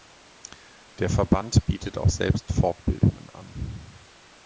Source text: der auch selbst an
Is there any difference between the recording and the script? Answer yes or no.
yes